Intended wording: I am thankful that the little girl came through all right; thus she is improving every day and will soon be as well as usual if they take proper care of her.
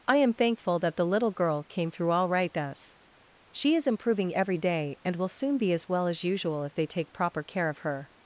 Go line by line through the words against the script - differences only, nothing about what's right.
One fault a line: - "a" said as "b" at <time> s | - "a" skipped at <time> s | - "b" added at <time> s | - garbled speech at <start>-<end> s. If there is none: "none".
none